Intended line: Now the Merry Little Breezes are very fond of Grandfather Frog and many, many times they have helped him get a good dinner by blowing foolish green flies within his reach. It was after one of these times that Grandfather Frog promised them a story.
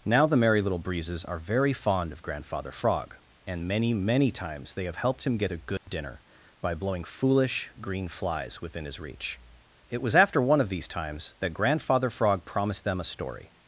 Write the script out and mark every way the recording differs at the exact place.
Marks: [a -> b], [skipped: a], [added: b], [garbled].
Now the Merry Little Breezes are very fond of Grandfather Frog and many, many times they have helped him get a good dinner by blowing foolish green flies within his reach. It was after one of these times that Grandfather Frog promised them a story.